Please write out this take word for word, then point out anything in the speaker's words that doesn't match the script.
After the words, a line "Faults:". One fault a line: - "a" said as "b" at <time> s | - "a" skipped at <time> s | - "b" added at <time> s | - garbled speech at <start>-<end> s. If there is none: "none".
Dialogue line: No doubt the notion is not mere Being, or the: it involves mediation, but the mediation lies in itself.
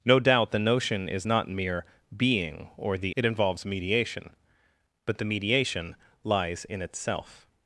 No doubt the notion is not mere Being, or the: it involves mediation, but the mediation lies in itself.
Faults:
none